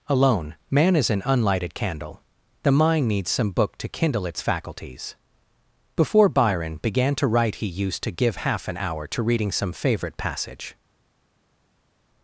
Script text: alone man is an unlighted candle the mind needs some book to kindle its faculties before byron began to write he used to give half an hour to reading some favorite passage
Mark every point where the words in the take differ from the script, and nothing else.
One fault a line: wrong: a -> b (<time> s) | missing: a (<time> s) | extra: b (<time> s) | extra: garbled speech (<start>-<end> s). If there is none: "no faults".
no faults